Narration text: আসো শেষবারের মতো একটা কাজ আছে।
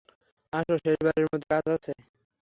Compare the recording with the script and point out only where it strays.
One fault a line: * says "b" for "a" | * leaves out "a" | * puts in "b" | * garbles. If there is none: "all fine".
* leaves out "একটা"